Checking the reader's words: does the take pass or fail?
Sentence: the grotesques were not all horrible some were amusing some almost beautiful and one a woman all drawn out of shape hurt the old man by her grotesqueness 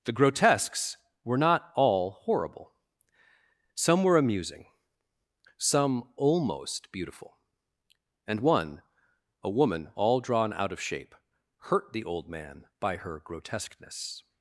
pass